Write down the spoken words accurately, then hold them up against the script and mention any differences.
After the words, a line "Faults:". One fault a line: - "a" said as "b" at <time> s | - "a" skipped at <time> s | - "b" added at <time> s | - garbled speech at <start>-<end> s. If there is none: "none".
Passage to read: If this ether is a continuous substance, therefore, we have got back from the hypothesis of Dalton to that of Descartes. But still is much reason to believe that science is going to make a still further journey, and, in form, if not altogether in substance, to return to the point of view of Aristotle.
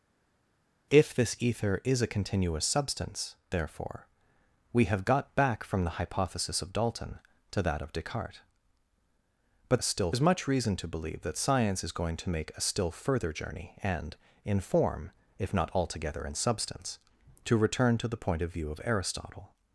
If this ether is a continuous substance, therefore, we have got back from the hypothesis of Dalton to that of Descartes. But still is much reason to believe that science is going to make a still further journey, and, in form, if not altogether in substance, to return to the point of view of Aristotle.
Faults:
none